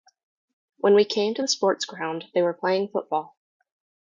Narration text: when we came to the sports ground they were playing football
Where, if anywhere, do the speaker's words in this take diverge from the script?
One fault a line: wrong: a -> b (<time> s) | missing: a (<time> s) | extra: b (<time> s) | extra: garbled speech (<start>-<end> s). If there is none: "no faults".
no faults